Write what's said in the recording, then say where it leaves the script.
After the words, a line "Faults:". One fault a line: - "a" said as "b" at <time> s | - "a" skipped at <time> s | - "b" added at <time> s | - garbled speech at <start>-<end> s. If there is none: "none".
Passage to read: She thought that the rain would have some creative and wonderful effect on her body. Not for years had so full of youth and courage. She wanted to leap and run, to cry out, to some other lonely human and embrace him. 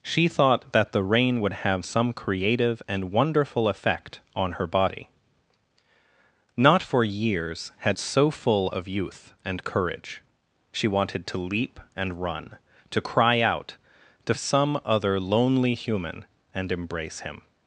She thought that the rain would have some creative and wonderful effect on her body. Not for years had so full of youth and courage. She wanted to leap and run, to cry out, to some other lonely human and embrace him.
Faults:
none